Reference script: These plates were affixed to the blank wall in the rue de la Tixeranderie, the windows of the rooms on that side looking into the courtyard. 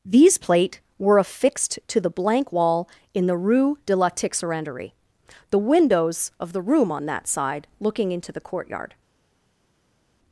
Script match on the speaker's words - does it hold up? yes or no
no